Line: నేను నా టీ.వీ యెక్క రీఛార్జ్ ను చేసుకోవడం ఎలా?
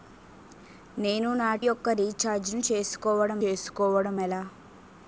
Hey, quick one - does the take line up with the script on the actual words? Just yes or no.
no